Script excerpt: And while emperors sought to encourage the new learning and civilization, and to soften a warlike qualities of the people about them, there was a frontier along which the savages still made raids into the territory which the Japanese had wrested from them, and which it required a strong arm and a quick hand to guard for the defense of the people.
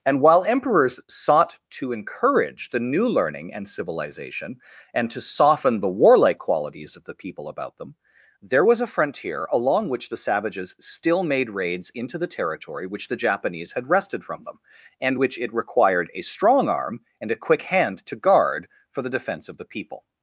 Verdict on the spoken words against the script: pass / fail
fail